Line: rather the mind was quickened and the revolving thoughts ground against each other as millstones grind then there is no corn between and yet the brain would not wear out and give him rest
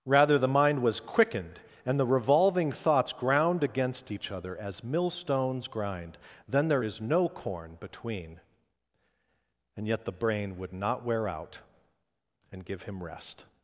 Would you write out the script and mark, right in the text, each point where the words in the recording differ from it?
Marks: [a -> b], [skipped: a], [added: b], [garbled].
rather the mind was quickened and the revolving thoughts ground against each other as millstones grind then there is no corn between and yet the brain would not wear out and give him rest